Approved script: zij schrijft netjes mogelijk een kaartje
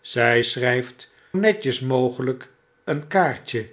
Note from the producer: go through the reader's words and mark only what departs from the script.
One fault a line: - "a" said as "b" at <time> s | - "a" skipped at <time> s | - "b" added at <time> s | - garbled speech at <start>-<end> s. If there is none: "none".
none